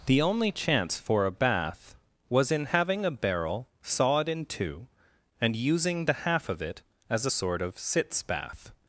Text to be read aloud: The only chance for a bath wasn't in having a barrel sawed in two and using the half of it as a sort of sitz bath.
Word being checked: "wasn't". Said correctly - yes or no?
no